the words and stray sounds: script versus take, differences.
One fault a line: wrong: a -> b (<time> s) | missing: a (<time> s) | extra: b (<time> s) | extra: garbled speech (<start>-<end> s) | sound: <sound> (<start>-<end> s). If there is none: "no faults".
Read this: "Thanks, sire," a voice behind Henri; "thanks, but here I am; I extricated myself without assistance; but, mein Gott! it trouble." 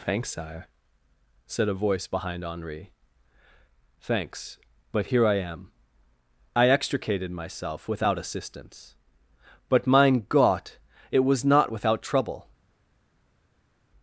extra: said (1.4 s)
extra: was not without (11.2 s)